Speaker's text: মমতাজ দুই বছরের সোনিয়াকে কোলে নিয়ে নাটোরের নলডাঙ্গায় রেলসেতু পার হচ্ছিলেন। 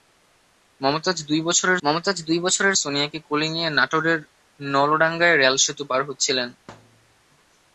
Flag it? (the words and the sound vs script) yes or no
yes